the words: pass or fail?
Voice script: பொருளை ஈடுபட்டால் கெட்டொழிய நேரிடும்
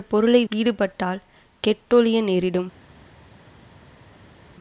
pass